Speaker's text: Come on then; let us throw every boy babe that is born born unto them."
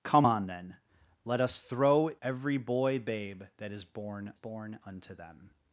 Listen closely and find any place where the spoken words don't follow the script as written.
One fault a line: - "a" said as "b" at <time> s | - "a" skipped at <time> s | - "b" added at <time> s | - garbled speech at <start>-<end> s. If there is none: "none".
none